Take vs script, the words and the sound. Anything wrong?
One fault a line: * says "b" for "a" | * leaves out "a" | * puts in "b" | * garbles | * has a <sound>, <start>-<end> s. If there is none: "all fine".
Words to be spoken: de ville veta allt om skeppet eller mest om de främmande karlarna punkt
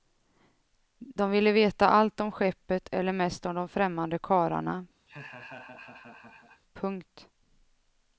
* has a laugh, 5.1-6.6 s